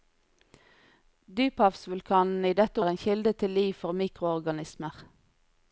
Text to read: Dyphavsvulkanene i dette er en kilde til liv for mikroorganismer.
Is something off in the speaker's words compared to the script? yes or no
no